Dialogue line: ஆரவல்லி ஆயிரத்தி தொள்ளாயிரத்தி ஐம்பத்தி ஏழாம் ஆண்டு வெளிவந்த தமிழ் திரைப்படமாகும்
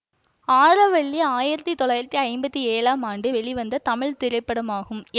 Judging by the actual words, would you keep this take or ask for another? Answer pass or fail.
pass